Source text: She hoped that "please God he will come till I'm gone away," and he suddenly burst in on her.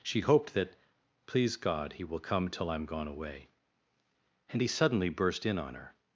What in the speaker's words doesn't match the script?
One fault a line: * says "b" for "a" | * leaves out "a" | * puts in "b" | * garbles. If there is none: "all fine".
all fine